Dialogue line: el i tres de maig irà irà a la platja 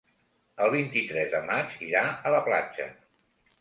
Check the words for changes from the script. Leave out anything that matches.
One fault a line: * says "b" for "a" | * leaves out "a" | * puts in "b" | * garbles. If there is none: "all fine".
* puts in "vint"
* leaves out "irà"